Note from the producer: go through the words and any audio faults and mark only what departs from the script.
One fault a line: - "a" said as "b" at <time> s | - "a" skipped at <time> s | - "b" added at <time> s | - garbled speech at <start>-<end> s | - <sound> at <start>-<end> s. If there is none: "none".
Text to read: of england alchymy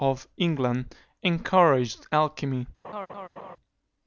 - "encouraged" added at 1.2 s
- laugh at 2.8-3.6 s